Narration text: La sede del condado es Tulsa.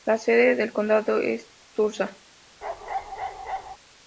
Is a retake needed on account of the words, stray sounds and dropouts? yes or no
yes